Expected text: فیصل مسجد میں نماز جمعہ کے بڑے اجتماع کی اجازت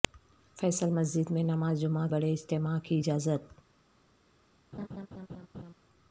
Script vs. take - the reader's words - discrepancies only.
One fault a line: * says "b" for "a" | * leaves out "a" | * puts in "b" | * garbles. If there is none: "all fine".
* leaves out "کے"